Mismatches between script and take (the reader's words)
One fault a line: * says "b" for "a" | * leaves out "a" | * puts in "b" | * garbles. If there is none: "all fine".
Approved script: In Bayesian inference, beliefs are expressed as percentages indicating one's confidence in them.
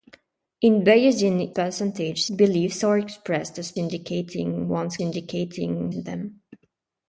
* says "percentages" for "inference"
* leaves out "percentages"
* says "indicating" for "confidence"